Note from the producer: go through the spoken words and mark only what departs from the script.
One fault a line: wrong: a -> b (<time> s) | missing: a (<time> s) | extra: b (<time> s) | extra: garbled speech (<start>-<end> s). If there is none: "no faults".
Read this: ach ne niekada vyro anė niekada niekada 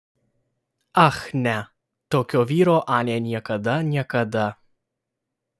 wrong: niekada -> tokio (2.1 s)